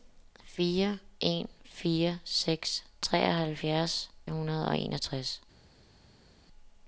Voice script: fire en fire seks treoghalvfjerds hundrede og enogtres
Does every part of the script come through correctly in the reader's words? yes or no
yes